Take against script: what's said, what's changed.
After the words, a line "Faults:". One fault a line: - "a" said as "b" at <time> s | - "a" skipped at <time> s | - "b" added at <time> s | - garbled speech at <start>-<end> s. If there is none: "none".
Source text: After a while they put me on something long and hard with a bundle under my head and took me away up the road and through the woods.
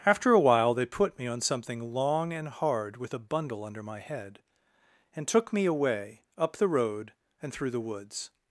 After a while they put me on something long and hard with a bundle under my head and took me away up the road and through the woods.
Faults:
none